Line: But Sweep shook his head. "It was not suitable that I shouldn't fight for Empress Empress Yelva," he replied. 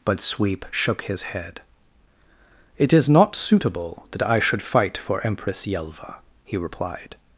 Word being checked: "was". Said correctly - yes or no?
no